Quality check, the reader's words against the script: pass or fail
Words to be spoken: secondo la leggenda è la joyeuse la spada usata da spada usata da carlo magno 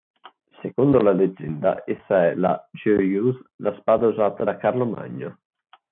fail